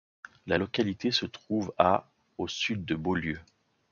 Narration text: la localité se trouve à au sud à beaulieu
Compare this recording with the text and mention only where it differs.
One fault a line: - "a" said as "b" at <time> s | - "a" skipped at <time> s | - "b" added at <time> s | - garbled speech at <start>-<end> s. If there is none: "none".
- "à" said as "de" at 2.8 s